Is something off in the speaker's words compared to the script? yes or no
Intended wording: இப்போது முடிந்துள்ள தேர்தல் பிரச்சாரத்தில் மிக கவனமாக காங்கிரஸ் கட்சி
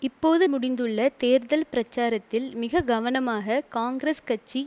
no